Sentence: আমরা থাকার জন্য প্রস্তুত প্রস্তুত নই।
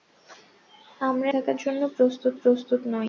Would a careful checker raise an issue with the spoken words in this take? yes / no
no